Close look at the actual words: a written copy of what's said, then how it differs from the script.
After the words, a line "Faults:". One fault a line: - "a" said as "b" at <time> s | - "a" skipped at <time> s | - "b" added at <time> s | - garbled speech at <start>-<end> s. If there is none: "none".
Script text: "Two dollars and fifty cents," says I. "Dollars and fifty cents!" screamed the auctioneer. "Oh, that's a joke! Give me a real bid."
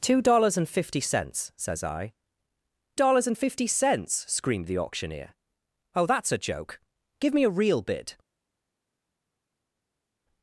"Two dollars and fifty cents," says I. "Dollars and fifty cents!" screamed the auctioneer. "Oh, that's a joke! Give me a real bid."
Faults:
none